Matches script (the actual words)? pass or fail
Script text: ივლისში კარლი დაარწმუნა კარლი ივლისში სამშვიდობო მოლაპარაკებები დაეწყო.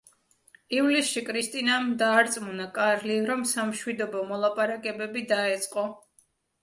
fail